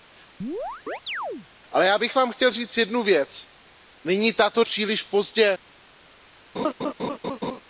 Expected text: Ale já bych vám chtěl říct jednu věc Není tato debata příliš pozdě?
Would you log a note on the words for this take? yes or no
yes